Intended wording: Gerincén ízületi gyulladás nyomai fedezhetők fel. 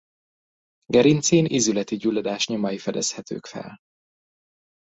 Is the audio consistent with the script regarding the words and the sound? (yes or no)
yes